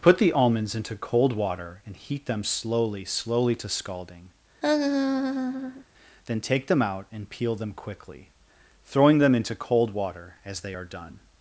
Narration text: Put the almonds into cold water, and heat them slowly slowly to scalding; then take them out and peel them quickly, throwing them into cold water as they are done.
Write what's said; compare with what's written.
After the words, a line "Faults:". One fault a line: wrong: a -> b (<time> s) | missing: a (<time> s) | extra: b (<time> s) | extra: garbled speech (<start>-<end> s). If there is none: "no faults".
Put the almonds into cold water, and heat them slowly slowly to scalding; then take them out and peel them quickly, throwing them into cold water as they are done.
Faults:
no faults